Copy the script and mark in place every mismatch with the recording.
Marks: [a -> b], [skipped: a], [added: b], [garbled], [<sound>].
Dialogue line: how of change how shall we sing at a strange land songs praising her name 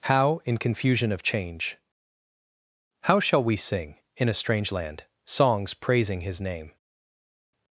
how [added: in confusion] of change how shall we sing [at -> in] a strange land songs praising [her -> his] name